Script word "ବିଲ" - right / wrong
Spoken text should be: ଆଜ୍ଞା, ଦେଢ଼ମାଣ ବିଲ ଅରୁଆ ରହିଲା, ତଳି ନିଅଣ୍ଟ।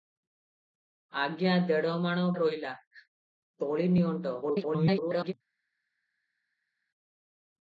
wrong